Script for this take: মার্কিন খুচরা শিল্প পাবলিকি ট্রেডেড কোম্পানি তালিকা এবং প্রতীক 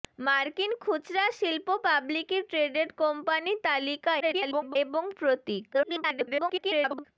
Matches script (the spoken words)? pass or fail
fail